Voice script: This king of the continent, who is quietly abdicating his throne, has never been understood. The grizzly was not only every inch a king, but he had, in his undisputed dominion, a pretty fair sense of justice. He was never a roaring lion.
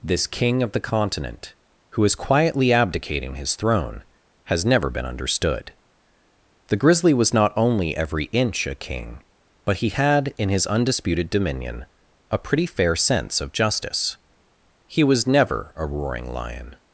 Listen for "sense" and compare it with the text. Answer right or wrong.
right